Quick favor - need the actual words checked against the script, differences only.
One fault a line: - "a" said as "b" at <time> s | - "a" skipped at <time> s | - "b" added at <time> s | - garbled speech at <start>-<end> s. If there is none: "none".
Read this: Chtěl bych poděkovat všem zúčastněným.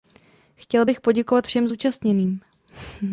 none